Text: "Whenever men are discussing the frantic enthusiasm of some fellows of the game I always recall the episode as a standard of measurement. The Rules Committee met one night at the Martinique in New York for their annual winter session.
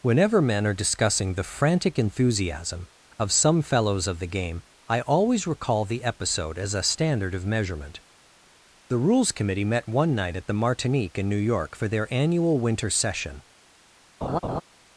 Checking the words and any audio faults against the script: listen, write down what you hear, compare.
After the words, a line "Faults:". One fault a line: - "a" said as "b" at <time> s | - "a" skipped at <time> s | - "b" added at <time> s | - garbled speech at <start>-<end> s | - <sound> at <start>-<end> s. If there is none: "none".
"Whenever men are discussing the frantic enthusiasm of some fellows of the game I always recall the episode as a standard of measurement. The Rules Committee met one night at the Martinique in New York for their annual winter session.
Faults:
- laugh at 14.2-14.6 s